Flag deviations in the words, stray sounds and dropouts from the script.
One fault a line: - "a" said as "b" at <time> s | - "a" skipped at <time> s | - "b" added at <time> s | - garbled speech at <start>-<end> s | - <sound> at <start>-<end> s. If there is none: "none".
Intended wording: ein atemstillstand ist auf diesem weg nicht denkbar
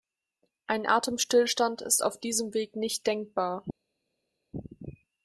none